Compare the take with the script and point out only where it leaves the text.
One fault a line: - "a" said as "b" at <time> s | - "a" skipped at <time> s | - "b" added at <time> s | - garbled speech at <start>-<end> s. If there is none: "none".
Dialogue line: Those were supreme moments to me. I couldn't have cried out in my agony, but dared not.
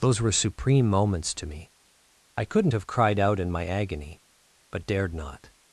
none